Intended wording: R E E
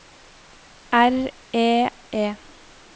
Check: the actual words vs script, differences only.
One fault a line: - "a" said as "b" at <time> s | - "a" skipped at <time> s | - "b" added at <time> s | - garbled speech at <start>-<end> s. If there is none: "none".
none